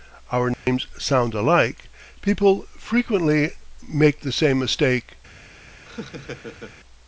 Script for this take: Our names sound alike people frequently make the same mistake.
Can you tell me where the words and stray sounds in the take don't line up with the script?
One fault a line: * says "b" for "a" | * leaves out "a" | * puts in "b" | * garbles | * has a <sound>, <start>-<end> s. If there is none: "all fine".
* has a dropout, 0.5-0.7 s
* has a laugh, 5.8-6.8 s